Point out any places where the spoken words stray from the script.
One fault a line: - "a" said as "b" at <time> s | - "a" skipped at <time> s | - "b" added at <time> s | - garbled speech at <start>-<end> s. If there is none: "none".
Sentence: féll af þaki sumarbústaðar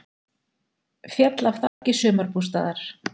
none